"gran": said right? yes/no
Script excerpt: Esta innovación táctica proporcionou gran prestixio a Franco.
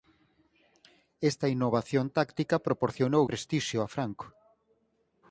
no